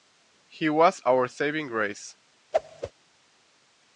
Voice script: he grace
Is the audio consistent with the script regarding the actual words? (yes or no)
no